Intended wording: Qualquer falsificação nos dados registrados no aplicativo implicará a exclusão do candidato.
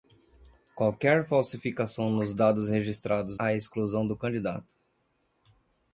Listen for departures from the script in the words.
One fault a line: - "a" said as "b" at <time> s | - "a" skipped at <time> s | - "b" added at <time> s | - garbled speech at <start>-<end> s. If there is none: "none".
- "no aplicativo implicará" skipped at 3.4 s